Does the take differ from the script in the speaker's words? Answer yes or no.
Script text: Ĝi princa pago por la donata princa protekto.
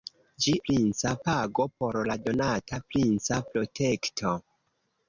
no